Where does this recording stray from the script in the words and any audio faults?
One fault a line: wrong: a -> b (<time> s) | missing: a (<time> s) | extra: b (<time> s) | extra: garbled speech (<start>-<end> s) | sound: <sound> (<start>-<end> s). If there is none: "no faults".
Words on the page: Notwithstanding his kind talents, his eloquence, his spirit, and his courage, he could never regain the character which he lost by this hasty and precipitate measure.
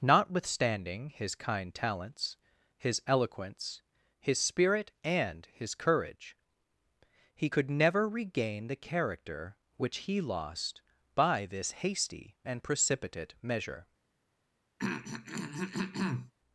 sound: throat clearing (14.8-16.3 s)